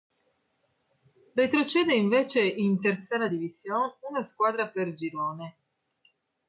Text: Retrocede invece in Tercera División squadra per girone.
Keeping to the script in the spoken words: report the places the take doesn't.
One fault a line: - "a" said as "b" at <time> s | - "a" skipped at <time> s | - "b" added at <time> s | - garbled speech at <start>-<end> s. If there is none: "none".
- "una" added at 4.1 s